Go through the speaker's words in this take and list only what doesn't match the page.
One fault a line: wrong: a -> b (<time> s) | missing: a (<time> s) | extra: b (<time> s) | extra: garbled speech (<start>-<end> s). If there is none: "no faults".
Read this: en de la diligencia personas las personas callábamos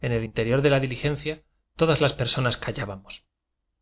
extra: el interior (0.1 s)
wrong: personas -> todas (1.7 s)